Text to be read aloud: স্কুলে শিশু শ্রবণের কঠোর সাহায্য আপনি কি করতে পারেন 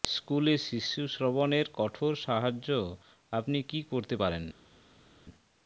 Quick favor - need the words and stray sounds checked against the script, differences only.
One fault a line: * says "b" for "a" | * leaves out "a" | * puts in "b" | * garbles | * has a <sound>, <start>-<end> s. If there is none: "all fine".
all fine